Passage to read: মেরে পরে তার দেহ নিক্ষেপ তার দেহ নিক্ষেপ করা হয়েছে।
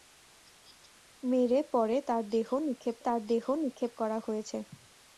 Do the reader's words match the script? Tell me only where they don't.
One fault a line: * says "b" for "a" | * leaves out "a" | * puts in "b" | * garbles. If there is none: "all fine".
all fine